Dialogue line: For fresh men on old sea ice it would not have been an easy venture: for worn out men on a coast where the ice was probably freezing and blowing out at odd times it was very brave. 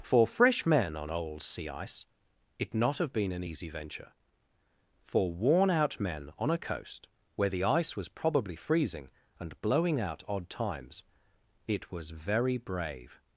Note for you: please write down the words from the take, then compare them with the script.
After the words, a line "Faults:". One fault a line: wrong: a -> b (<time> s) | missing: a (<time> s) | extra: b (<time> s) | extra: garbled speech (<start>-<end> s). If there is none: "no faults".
For fresh men on old sea ice it not have been an easy venture: for worn out men on a coast where the ice was probably freezing and blowing out odd times it was very brave.
Faults:
missing: would (2.7 s)
missing: at (10.2 s)